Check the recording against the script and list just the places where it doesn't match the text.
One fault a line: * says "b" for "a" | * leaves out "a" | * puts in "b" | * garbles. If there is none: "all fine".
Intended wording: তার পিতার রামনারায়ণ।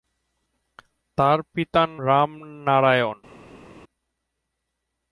all fine